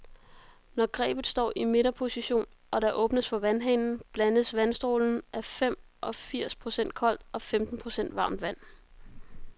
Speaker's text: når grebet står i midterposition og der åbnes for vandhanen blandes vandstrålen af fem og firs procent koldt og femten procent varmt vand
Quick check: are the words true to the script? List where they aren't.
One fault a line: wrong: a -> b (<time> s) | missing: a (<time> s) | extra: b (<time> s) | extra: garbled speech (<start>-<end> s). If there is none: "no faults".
no faults